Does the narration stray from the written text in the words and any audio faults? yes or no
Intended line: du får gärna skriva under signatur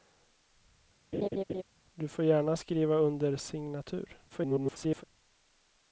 yes